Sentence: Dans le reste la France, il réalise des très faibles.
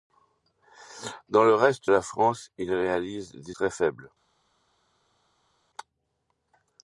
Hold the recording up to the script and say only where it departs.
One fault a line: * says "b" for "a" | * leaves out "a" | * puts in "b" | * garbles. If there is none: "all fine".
all fine